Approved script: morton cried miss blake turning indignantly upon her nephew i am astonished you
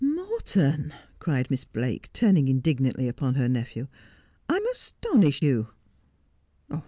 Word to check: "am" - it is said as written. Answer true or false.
true